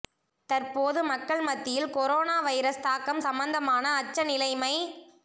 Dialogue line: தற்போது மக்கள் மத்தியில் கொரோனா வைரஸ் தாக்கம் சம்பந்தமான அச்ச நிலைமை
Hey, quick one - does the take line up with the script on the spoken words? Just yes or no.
yes